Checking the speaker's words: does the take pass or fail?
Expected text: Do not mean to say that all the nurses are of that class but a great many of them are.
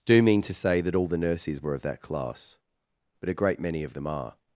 fail